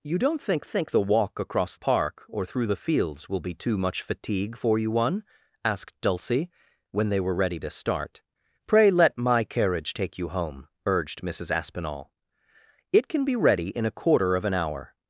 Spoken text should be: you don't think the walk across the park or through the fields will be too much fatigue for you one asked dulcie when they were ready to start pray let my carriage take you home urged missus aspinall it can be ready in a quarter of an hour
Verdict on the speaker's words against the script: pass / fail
fail